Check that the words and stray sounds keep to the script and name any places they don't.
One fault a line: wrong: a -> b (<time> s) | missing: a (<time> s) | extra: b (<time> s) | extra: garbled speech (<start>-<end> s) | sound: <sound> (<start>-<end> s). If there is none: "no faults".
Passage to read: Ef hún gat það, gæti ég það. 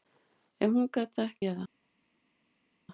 missing: gæti (1.3 s)